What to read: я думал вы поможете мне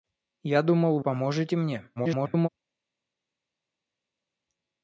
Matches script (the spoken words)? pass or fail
fail